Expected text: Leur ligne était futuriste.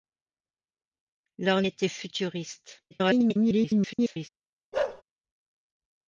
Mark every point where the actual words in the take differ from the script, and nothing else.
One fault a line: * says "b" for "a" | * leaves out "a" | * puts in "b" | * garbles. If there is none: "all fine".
* leaves out "ligne"
* garbles